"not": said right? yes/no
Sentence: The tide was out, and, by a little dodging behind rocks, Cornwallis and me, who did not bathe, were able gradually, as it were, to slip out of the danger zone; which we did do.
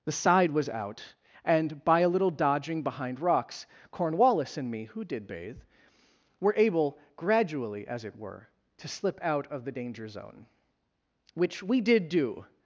no